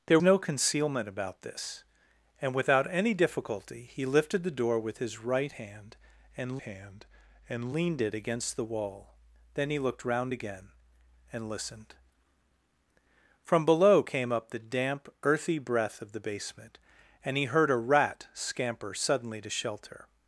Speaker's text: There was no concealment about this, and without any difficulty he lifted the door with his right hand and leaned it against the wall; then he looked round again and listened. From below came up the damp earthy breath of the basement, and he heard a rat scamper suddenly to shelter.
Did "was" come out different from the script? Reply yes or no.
yes